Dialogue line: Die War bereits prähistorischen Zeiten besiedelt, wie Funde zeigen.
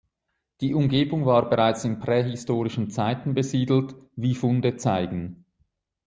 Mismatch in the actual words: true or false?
true